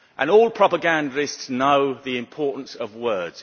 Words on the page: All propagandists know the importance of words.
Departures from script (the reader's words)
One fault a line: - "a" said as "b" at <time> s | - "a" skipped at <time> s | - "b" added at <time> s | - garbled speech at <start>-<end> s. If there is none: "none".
none